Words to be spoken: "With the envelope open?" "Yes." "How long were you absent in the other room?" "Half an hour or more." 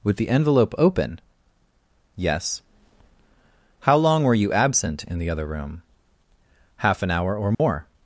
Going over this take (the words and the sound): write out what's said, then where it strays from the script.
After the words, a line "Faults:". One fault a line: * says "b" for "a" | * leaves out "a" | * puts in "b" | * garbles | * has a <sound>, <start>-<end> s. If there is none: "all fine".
"With the envelope open?" "Yes." "How long were you absent in the other room?" "Half an hour or more."
Faults:
* has a dropout, 7.5-7.6 s